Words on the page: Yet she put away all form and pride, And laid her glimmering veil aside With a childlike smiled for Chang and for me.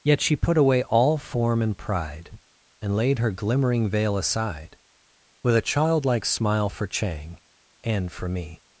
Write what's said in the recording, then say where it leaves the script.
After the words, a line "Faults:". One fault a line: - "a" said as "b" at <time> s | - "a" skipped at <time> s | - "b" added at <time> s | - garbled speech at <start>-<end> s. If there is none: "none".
Yet she put away all form and pride, And laid her glimmering veil aside With a childlike smile for Chang and for me.
Faults:
- "smiled" said as "smile" at 6.2 s